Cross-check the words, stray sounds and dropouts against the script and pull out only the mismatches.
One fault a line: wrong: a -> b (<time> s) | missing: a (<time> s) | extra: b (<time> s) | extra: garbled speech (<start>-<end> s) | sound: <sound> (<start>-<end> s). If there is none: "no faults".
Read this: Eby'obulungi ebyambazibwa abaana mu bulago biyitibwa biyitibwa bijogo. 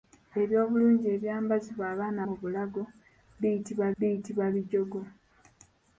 no faults